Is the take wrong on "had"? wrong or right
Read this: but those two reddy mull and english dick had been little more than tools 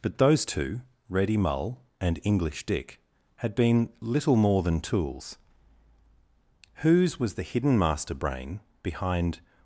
right